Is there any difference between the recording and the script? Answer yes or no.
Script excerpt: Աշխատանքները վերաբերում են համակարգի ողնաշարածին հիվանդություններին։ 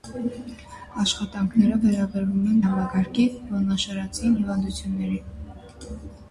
no